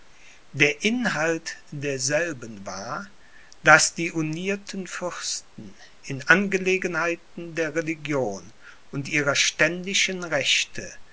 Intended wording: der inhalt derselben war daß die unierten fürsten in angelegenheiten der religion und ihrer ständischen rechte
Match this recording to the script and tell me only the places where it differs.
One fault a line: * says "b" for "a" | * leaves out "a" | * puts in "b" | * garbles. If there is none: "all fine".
all fine